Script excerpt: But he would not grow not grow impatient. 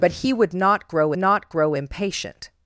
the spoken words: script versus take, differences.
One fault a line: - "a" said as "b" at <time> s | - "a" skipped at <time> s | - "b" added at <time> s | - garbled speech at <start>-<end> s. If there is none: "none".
none